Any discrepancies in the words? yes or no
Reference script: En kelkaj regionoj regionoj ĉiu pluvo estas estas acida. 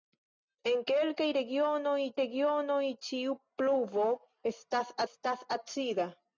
no